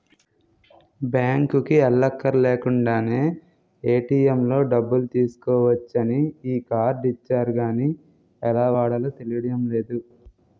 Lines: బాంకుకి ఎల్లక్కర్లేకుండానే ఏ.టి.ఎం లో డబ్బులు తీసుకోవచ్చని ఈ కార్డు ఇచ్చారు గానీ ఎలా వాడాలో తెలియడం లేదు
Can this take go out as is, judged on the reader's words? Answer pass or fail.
pass